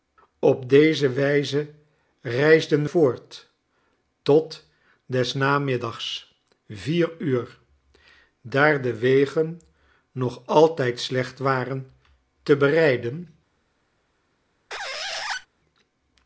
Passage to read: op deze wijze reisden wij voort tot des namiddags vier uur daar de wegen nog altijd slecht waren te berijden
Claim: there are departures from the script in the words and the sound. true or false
true